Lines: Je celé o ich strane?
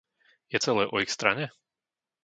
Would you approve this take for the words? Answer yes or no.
yes